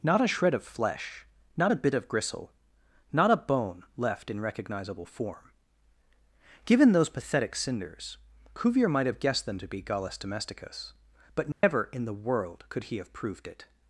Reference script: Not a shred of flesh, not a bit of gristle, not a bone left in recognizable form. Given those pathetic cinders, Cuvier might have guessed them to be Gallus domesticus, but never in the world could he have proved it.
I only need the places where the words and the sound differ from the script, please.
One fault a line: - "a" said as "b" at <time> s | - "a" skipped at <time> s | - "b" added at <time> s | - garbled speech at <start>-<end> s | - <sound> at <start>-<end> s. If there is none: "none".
- dropout at 11.5-11.6 s